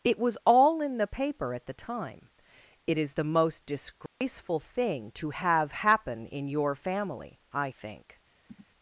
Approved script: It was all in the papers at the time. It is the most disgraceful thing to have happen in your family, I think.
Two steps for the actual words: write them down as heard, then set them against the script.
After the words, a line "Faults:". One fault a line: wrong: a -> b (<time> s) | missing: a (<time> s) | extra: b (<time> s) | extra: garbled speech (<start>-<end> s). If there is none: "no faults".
It was all in the paper at the time. It is the most disgraceful thing to have happen in your family, I think.
Faults:
wrong: papers -> paper (1.0 s)